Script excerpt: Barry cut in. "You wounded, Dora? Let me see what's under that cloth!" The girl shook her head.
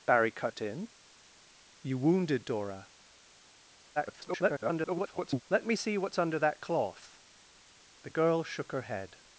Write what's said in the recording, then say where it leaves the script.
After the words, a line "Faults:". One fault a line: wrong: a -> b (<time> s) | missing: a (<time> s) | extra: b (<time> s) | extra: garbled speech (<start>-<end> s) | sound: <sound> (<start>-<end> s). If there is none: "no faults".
Barry cut in. "You wounded, Dora? [garbled] Let me see what's under that cloth!" The girl shook her head.
Faults:
extra: garbled speech (4.0-5.4 s)